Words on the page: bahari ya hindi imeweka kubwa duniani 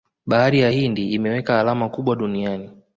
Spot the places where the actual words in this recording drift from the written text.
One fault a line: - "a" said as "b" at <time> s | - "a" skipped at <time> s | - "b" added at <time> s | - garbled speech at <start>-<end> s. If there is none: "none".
- "alama" added at 1.6 s